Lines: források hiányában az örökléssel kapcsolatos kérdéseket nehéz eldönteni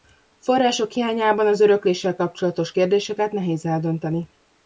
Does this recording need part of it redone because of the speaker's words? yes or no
no